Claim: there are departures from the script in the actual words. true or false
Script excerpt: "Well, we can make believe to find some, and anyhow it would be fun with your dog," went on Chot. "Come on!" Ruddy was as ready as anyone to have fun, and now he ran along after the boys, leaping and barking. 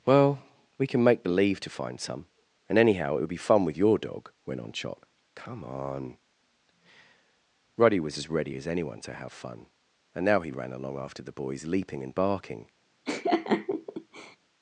false